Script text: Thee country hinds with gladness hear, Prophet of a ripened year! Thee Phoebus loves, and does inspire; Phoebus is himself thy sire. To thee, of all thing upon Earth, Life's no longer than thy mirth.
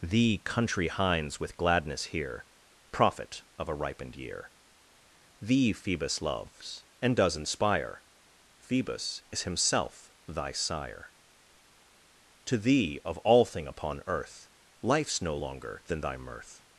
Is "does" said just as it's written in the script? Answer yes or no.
yes